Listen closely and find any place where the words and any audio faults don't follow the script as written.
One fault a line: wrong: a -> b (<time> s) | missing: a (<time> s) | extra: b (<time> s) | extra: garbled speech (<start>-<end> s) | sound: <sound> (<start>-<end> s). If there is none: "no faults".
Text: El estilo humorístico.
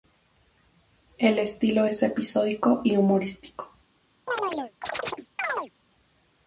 extra: es episódico y (1.8 s)
sound: chirp (4.3-5.7 s)